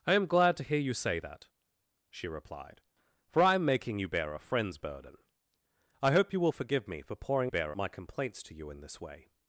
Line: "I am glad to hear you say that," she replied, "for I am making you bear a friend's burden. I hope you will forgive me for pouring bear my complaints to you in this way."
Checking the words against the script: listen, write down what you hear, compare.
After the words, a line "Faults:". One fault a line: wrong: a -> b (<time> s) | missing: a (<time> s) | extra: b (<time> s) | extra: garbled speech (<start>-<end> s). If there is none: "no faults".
"I am glad to hear you say that," she replied, "for I am making you bear a friend's burden. I hope you will forgive me for pouring bear my complaints to you in this way."
Faults:
no faults